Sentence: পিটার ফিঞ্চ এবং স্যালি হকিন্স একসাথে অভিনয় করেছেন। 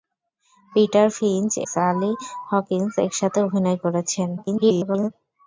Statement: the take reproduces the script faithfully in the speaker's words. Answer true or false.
false